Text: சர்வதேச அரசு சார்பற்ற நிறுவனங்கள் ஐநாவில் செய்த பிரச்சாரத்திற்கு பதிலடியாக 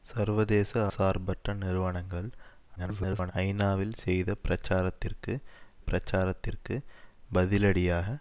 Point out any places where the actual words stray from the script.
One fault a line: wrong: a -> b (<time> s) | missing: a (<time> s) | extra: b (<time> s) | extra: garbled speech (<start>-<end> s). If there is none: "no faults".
missing: அரசு (0.7 s)
extra: garbled speech (2.8-3.3 s)
extra: பிரச்சாரத்திற்கு (5.9 s)